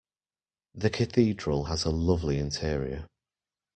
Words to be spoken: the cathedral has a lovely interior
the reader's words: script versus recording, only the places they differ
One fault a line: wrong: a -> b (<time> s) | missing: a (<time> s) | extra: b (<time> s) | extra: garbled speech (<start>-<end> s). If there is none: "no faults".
no faults